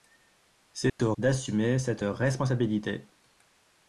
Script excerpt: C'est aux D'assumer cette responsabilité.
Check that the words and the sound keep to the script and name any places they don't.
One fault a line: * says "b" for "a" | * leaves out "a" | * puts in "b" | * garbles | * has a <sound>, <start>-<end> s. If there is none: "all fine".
* has a dropout, 0.9-1.0 s